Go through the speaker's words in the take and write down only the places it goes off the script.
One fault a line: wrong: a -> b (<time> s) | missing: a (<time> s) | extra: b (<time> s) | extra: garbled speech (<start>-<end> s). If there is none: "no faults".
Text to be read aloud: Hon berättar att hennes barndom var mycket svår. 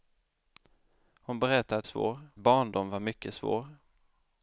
wrong: hennes -> svår (1.9 s)